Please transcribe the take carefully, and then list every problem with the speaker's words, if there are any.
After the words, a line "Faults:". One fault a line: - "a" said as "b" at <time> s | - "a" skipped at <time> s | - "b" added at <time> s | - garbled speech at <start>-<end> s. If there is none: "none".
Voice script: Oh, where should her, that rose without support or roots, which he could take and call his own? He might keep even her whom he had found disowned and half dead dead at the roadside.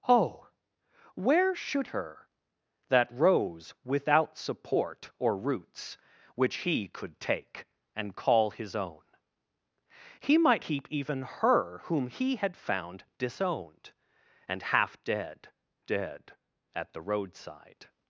Oh, where should her, that rose without support or roots, which he could take and call his own? He might keep even her whom he had found disowned and half dead dead at the roadside.
Faults:
none